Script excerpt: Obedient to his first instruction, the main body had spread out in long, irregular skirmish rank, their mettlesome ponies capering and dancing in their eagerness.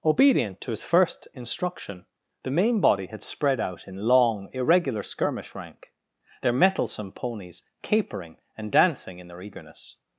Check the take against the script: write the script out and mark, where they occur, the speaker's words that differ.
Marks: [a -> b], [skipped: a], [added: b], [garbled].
Obedient to his first instruction, the main body had spread out in long, irregular skirmish rank, their mettlesome ponies capering and dancing in their eagerness.